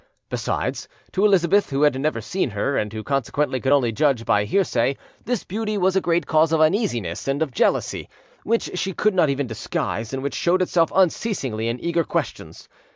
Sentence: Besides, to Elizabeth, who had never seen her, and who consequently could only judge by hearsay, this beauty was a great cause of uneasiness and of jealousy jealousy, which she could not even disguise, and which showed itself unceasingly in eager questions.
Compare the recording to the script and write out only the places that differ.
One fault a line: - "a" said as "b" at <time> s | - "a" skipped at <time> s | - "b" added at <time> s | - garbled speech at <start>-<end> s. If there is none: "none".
- "jealousy" skipped at 8.1 s